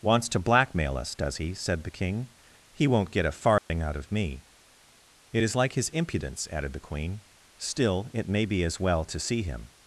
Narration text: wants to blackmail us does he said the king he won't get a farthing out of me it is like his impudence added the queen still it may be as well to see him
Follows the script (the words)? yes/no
yes